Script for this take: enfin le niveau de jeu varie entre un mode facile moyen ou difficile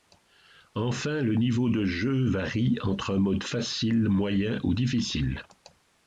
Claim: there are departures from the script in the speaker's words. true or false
false